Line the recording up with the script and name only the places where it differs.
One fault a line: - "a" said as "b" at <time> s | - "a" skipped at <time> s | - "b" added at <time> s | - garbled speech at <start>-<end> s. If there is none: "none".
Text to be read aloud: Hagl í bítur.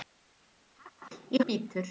none